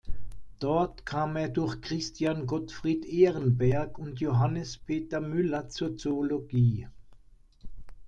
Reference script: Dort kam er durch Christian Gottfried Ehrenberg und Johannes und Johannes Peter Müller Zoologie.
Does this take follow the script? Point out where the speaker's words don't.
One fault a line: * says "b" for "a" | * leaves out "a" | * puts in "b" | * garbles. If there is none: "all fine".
* leaves out "und Johannes"
* puts in "zur"